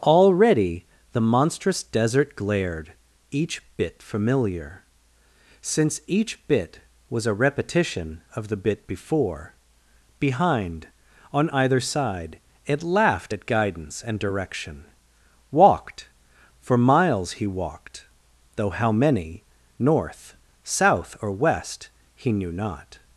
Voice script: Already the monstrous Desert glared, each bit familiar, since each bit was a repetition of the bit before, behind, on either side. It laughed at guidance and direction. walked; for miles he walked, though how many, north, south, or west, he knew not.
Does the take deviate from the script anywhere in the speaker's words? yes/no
no